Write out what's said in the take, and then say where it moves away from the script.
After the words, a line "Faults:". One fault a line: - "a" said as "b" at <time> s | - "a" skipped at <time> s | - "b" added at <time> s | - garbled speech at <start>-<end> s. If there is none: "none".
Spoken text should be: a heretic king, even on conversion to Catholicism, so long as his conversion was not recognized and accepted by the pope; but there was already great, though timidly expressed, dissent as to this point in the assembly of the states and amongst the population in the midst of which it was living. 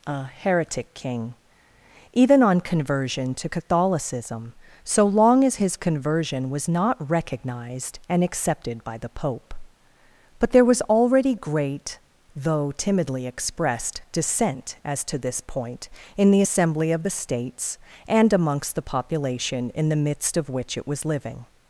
a heretic king, even on conversion to Catholicism, so long as his conversion was not recognized and accepted by the pope; but there was already great, though timidly expressed, dissent as to this point in the assembly of the states and amongst the population in the midst of which it was living.
Faults:
none